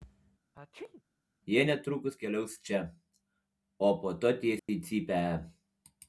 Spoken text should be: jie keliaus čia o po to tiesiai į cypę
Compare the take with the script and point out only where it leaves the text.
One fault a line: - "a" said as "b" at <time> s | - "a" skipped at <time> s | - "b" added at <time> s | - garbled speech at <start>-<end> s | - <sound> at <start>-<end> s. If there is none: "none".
- sneeze at 0.5-1.0 s
- "netrukus" added at 1.7 s
- dropout at 4.6-4.7 s